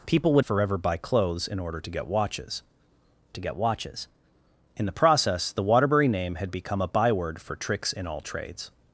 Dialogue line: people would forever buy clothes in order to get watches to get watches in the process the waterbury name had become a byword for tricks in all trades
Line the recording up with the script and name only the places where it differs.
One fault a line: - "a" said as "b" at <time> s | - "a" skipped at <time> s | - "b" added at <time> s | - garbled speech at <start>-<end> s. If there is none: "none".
none